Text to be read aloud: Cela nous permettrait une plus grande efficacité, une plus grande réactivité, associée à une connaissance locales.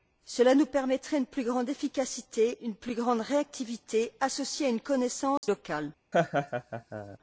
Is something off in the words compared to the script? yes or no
no